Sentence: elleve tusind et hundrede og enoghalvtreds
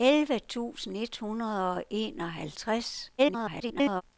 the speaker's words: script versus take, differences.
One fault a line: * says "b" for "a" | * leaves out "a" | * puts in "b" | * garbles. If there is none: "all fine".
* garbles